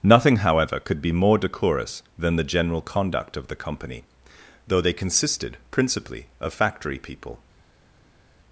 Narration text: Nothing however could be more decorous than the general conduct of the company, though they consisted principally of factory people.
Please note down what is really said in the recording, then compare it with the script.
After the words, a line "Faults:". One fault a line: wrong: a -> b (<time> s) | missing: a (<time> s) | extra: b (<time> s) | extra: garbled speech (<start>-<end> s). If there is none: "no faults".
Nothing however could be more decorous than the general conduct of the company, though they consisted principally of factory people.
Faults:
no faults